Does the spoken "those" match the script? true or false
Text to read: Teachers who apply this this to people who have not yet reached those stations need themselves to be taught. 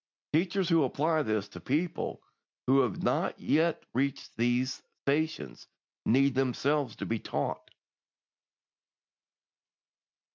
false